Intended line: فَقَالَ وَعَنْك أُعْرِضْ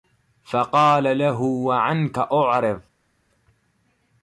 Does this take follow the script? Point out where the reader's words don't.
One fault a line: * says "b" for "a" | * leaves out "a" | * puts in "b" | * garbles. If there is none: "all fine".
* puts in "لَهُ"